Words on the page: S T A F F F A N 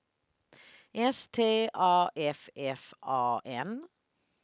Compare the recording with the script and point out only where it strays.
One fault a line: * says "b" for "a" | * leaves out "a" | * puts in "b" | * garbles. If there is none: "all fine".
* leaves out "F"